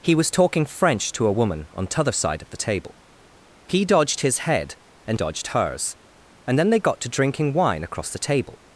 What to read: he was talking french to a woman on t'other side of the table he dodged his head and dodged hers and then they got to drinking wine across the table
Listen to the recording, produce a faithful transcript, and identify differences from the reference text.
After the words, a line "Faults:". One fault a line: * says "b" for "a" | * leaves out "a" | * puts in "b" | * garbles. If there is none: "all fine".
he was talking french to a woman on t'other side of the table he dodged his head and dodged hers and then they got to drinking wine across the table
Faults:
all fine